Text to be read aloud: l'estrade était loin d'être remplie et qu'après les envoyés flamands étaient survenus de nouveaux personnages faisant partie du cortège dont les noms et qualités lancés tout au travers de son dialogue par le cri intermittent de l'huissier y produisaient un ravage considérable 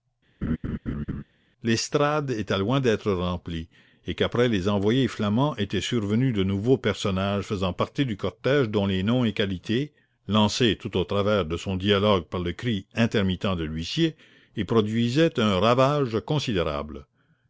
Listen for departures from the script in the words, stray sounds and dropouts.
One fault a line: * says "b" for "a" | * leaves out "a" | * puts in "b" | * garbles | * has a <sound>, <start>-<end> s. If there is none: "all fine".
* has a laugh, 0.4-1.2 s